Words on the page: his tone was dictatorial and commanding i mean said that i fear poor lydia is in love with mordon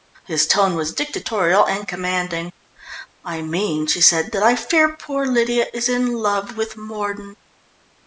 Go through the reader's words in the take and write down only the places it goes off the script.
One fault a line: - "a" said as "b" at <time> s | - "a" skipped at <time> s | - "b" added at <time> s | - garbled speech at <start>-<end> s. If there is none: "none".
- "she" added at 3.9 s